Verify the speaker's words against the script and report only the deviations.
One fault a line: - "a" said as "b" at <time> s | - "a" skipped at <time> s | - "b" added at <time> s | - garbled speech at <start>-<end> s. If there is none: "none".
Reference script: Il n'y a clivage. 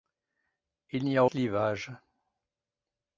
none